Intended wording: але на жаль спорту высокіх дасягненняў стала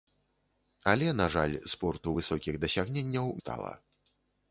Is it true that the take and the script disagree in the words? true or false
false